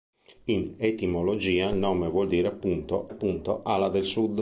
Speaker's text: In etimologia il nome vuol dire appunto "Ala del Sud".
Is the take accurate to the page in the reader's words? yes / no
no